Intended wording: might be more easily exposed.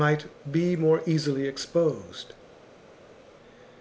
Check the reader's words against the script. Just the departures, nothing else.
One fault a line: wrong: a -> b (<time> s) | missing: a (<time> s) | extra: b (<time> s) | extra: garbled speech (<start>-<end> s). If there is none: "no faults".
no faults